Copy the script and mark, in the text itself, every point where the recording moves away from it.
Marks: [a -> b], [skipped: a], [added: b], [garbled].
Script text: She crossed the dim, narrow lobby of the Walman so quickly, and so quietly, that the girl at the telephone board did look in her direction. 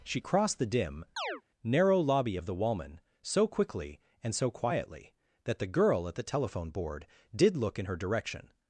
She crossed the dim, narrow lobby of the Walman so quickly, and so quietly, that the girl at the telephone board did look in her direction.